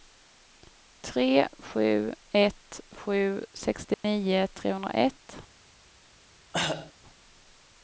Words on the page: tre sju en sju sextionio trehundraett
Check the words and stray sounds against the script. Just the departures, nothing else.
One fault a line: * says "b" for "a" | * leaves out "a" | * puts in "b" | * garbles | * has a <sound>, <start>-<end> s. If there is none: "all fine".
* says "ett" for "en"
* has a dropout, 3.9-4.0 s
* has a cough, 6.5-6.9 s